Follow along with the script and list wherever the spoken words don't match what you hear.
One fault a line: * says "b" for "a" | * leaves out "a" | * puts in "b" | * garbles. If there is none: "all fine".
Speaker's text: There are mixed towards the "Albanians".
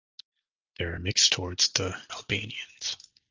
all fine